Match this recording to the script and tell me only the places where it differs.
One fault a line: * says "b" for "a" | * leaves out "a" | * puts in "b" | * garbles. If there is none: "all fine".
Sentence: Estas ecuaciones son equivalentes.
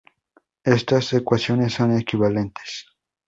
all fine